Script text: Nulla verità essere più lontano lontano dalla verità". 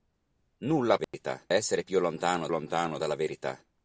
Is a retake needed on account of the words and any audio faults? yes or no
yes